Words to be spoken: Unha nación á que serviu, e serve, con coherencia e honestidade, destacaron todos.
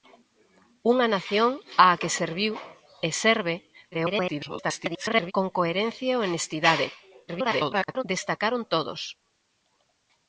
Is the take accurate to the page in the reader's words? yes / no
no